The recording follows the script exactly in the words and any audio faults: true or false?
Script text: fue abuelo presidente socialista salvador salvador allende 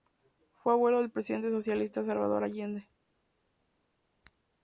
false